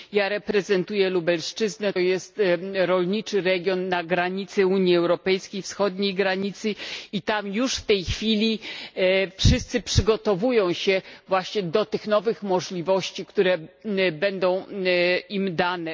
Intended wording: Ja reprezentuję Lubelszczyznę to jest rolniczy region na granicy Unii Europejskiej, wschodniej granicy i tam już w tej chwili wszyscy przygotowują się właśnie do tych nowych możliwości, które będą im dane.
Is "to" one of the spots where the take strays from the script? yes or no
yes